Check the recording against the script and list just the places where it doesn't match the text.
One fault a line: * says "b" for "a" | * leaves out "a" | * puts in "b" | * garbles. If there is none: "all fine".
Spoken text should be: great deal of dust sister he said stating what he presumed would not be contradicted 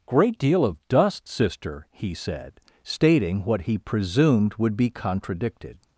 * leaves out "not"